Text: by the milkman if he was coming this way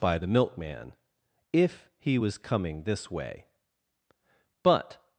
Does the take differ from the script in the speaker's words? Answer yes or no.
yes